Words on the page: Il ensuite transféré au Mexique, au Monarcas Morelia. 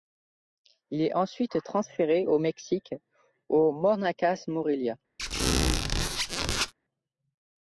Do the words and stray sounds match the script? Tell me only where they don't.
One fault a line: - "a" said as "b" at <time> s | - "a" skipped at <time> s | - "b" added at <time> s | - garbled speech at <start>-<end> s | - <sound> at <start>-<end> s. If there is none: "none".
- "est" added at 1.0 s
- squeak at 5.2-6.7 s